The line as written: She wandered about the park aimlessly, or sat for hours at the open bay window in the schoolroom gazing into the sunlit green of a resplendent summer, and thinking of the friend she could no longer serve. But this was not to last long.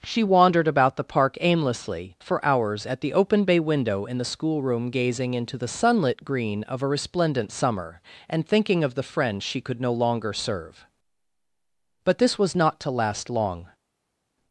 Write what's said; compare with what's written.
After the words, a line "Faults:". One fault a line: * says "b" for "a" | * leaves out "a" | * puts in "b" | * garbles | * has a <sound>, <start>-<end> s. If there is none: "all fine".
She wandered about the park aimlessly, for hours at the open bay window in the schoolroom gazing into the sunlit green of a resplendent summer, and thinking of the friend she could no longer serve. But this was not to last long.
Faults:
* leaves out "or sat"